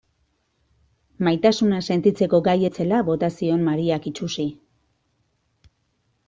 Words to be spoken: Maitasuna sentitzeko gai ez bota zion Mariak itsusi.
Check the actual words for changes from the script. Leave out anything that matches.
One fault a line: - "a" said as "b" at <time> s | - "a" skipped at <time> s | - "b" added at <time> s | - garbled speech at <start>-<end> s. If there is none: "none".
- "zela" added at 2.8 s